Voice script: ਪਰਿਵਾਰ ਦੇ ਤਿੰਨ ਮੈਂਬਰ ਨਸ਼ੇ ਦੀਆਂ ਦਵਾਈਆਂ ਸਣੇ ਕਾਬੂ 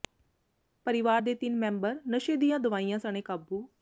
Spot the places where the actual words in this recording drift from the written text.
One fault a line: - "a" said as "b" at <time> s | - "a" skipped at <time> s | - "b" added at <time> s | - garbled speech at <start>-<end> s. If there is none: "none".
none